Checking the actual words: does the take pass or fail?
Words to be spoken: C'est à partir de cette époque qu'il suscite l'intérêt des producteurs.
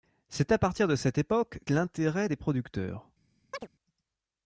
fail